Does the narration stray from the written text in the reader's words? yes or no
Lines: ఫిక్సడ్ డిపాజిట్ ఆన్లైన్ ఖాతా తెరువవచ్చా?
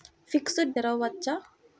yes